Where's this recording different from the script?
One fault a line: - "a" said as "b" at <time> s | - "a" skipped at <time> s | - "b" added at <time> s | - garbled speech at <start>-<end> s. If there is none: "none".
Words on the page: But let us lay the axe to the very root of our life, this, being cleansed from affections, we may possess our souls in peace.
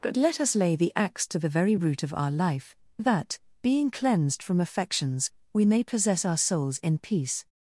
- "this" said as "that" at 3.0 s